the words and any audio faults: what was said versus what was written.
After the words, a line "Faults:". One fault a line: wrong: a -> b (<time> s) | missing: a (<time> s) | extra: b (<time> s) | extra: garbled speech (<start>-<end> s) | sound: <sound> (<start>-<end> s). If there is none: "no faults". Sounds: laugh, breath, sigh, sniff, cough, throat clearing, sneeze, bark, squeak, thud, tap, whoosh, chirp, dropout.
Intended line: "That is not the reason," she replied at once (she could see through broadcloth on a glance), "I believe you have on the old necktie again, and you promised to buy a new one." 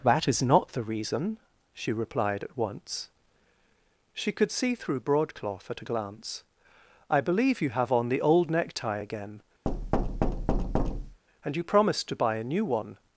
"That is not the reason," she replied at once (she could see through broadcloth at a glance), "I believe you have on the old necktie again, and you promised to buy a new one."
Faults:
wrong: on -> at (5.7 s)
sound: thud (9.7-11.2 s)